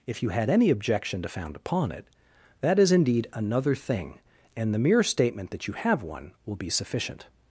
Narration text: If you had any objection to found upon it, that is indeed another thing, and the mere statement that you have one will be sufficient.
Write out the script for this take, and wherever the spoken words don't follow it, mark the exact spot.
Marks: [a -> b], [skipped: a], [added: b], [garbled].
If you had any objection to found upon it, that is indeed another thing, and the mere statement that you have one will be sufficient.